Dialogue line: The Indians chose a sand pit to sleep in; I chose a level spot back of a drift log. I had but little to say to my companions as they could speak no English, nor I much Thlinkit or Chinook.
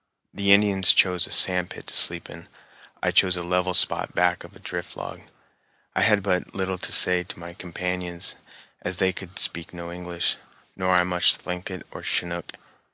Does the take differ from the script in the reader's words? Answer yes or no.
no